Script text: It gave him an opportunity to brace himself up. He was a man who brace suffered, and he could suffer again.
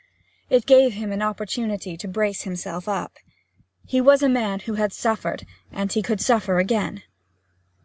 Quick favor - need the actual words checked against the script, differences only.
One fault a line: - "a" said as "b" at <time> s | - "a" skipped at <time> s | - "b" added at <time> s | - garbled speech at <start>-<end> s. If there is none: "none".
- "brace" said as "had" at 4.7 s